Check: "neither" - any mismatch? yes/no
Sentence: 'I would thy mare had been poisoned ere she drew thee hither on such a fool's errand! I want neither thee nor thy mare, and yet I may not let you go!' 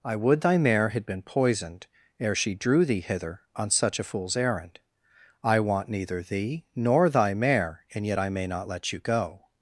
no